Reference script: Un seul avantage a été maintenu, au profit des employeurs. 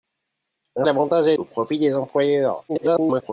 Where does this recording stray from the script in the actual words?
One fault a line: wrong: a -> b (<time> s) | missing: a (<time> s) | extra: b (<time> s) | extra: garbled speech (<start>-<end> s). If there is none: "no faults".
missing: seul (0.8 s)
missing: été maintenu (1.3 s)
extra: garbled speech (2.7-3.3 s)